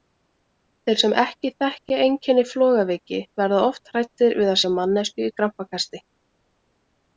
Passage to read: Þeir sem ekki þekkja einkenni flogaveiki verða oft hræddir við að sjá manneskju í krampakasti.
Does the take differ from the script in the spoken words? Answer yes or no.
no